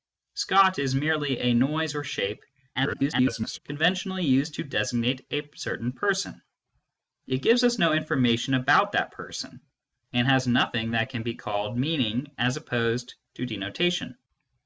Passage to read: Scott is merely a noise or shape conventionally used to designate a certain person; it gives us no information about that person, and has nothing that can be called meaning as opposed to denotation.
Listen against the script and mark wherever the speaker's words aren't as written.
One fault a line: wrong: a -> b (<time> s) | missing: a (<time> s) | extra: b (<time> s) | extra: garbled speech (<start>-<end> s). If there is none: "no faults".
extra: garbled speech (2.7-3.6 s)